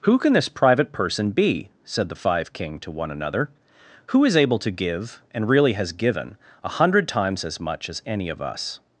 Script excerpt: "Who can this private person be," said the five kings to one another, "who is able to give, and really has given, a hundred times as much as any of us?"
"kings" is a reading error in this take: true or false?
true